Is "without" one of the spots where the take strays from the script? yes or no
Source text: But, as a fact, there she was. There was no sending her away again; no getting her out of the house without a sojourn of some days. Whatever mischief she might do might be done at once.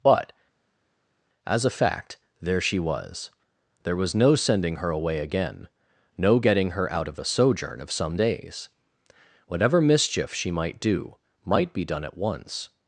yes